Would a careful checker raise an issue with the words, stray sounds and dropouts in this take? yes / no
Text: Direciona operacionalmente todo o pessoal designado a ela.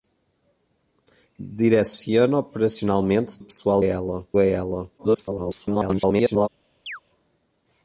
yes